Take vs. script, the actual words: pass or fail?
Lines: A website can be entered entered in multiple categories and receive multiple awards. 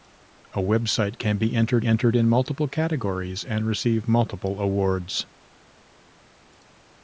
pass